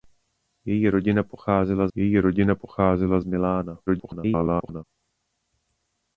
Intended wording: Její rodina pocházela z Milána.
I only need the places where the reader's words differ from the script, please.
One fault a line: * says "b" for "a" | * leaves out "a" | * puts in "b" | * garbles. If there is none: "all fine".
* puts in "její rodina pocházela"
* garbles